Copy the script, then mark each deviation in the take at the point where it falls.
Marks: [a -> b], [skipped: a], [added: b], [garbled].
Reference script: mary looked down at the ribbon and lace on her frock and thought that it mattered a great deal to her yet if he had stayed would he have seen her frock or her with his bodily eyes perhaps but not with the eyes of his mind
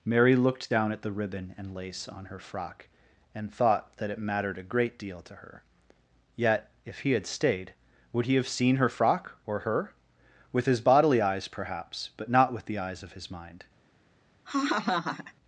mary looked down at the ribbon and lace on her frock and thought that it mattered a great deal to her yet if he had stayed would he have seen her frock or her with his bodily eyes perhaps but not with the eyes of his mind